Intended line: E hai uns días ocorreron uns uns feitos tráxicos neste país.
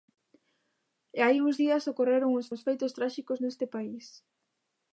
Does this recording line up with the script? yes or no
yes